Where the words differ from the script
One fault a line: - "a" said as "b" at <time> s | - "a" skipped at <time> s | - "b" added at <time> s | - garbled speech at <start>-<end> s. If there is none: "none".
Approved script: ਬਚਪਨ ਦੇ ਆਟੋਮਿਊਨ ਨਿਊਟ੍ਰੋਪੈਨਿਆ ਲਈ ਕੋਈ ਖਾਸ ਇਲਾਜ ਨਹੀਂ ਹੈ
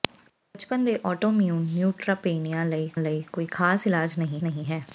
- "ਲਈ" added at 3.0 s
- "ਨਹੀਂ" added at 4.4 s